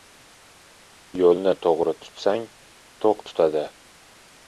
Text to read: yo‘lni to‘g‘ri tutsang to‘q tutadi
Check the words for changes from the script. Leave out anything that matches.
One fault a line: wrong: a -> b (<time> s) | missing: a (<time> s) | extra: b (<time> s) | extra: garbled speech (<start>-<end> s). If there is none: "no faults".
no faults